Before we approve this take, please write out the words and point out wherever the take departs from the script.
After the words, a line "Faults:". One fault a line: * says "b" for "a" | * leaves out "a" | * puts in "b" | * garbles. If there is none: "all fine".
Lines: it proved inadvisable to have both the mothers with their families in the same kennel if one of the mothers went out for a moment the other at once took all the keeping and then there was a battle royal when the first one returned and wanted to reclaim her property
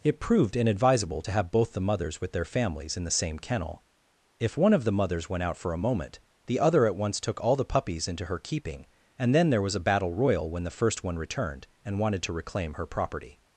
it proved inadvisable to have both the mothers with their families in the same kennel if one of the mothers went out for a moment the other at once took all the puppies into her keeping and then there was a battle royal when the first one returned and wanted to reclaim her property
Faults:
* puts in "puppies into her"